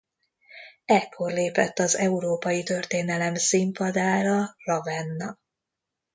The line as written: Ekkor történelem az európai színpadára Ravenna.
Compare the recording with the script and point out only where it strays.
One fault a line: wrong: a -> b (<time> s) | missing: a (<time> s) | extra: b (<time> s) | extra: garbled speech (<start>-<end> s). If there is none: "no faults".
wrong: történelem -> lépett (1.3 s)
extra: történelem (2.6 s)